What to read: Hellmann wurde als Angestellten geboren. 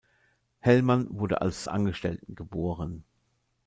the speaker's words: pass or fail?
pass